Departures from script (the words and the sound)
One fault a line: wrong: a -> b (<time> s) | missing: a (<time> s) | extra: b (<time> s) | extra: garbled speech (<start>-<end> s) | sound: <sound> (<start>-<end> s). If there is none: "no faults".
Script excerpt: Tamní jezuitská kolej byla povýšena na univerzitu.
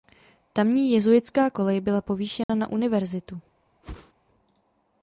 sound: dropout (2.4-2.5 s)
sound: whoosh (3.8-4.1 s)